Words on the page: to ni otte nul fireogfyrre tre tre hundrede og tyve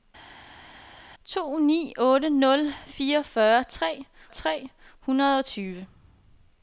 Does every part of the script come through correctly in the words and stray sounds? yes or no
yes